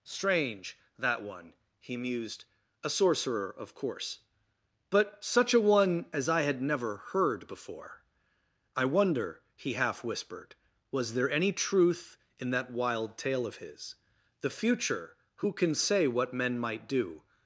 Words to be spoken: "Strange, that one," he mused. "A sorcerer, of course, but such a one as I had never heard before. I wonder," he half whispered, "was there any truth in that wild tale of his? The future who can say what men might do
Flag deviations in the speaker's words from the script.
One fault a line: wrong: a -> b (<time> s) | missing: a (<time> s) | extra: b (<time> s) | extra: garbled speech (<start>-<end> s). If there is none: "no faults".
no faults